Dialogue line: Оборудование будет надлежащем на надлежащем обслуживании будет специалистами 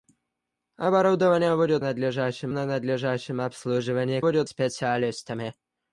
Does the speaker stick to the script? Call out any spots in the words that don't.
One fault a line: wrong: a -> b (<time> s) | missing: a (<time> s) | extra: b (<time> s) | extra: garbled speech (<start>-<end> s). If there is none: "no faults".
no faults